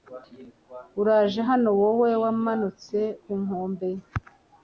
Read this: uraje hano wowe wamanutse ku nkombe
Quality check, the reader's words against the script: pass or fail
pass